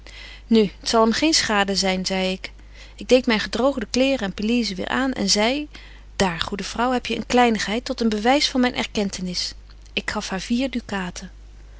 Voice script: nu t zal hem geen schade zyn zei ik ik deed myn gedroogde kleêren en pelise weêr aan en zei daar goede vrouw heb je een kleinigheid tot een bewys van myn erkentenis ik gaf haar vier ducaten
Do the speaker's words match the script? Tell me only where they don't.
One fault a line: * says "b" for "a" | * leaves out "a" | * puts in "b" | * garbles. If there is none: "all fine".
all fine